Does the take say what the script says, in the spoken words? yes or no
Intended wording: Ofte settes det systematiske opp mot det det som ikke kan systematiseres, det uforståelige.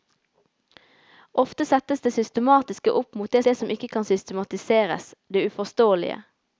yes